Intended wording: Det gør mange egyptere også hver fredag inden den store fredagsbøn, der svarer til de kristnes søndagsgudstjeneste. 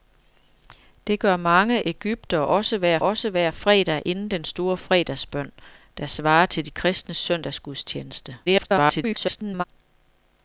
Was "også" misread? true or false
false